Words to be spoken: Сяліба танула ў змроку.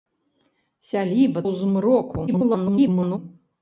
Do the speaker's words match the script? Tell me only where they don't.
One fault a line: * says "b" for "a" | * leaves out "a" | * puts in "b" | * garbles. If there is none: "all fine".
* leaves out "танула"
* garbles